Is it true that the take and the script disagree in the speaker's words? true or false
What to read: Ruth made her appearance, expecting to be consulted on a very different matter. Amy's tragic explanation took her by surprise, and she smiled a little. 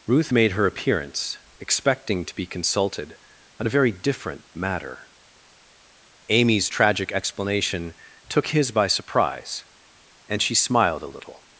true